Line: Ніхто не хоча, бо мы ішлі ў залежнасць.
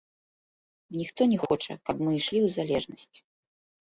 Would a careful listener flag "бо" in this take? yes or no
yes